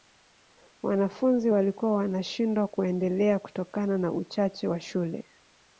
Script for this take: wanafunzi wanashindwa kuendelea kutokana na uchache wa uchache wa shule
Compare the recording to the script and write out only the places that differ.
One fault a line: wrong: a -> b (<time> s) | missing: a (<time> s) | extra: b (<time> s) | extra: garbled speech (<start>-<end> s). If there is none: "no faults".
extra: walikuwa (1.5 s)
missing: uchache wa (4.8 s)